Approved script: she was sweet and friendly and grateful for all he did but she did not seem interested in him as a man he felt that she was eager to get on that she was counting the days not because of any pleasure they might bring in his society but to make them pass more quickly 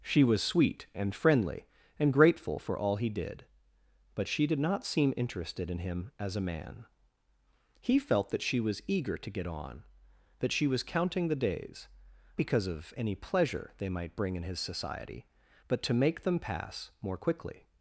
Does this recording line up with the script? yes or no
no